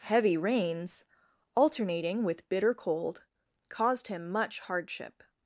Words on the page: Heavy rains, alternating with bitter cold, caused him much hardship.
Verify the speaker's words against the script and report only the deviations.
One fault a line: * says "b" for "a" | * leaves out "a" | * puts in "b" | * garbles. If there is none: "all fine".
all fine